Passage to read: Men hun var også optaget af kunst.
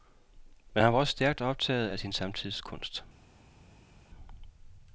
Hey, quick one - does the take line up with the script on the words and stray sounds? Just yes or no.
no